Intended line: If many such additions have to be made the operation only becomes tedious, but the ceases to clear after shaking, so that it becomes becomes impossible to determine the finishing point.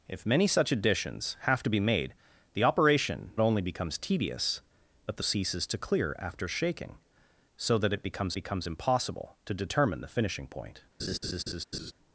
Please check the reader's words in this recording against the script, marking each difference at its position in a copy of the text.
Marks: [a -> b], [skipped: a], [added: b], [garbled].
If many such additions have to be made the operation only becomes tedious, but the ceases to clear after shaking, so that it becomes becomes impossible to determine the finishing point.